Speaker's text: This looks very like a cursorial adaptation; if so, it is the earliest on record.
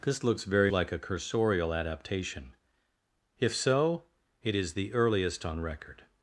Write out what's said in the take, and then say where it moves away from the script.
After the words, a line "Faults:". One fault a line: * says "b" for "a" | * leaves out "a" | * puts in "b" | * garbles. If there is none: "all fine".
This looks very like a cursorial adaptation; if so, it is the earliest on record.
Faults:
all fine